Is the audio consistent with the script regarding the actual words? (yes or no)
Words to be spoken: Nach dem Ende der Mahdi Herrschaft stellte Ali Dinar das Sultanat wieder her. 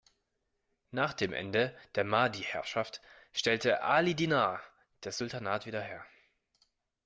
yes